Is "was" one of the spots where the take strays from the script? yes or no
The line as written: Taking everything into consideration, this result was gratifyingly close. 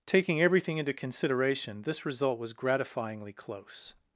no